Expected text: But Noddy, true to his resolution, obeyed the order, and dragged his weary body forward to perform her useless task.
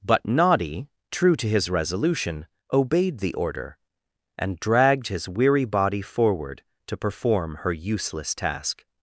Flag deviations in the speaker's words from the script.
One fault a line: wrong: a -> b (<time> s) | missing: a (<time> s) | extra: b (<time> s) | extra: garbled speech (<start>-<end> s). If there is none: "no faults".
no faults